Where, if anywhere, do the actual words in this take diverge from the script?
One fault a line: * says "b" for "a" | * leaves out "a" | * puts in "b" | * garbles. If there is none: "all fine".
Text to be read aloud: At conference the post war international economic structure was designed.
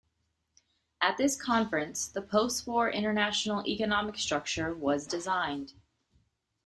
* puts in "this"